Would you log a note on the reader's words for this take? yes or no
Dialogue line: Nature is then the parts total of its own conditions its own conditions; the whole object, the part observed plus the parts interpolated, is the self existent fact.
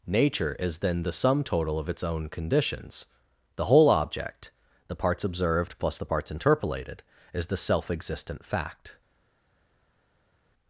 yes